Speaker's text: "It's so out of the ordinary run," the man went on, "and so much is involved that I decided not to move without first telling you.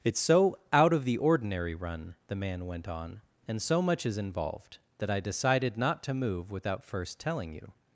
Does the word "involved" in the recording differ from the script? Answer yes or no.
no